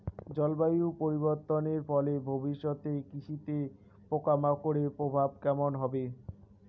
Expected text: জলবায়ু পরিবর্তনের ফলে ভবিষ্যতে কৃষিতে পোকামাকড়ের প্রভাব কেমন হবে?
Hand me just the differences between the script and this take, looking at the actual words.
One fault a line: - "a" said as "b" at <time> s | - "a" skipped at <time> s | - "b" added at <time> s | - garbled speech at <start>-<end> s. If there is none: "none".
none